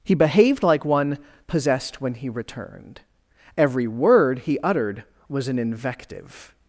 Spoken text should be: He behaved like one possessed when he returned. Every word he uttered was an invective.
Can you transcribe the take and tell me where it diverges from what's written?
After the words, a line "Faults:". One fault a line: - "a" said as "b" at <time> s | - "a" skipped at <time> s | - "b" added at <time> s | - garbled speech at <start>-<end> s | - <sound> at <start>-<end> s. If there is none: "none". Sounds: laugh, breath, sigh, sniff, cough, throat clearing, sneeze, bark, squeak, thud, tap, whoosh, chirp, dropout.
He behaved like one possessed when he returned. Every word he uttered was an invective.
Faults:
none